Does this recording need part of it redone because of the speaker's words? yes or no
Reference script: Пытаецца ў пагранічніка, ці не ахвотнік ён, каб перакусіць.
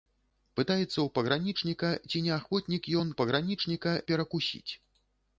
yes